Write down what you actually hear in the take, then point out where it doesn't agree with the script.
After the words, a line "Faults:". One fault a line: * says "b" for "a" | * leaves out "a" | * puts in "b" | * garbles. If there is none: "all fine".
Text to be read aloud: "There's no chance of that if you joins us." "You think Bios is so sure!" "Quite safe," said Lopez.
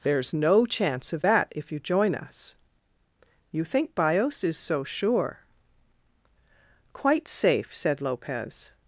"There's no chance of that if you join us." "You think Bios is so sure!" "Quite safe," said Lopez.
Faults:
* says "join" for "joins"